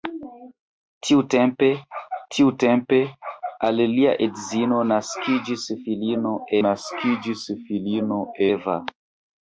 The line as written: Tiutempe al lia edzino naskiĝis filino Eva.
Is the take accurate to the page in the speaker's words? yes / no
no